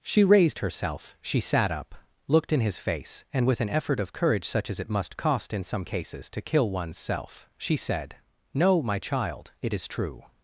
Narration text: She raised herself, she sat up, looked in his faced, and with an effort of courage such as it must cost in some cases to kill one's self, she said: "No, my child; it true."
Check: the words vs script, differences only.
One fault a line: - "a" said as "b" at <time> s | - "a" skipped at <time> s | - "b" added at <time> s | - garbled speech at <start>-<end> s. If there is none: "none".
- "faced" said as "face" at 2.8 s
- "is" added at 9.7 s